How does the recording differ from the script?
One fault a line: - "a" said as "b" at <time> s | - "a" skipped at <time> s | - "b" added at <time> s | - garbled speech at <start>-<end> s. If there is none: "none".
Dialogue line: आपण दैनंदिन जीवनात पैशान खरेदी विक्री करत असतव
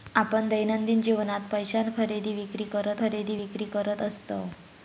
- "खरेदी विक्री करत" added at 3.0 s